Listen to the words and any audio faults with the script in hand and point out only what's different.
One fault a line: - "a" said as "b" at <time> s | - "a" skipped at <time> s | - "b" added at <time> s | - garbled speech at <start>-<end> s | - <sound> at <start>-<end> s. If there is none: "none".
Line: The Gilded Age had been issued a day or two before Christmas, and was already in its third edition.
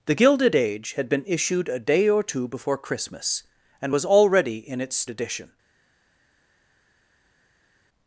- "third" skipped at 5.0 s